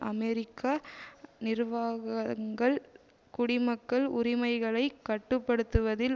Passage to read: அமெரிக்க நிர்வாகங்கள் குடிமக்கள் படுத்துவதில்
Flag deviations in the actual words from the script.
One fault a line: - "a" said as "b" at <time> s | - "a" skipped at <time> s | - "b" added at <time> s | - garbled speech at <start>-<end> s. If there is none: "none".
- "உரிமைகளை கட்டு" added at 4.1 s